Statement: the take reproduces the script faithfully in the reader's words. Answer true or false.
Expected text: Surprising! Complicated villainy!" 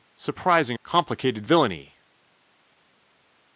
true